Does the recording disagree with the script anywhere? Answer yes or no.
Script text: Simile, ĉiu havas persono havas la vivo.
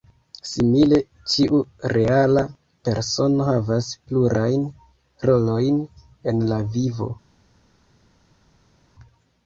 yes